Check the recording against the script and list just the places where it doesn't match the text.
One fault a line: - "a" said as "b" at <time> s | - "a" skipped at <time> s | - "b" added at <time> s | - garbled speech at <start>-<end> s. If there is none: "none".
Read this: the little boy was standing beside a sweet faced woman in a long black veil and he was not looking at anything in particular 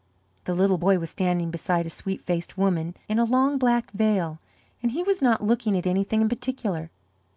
none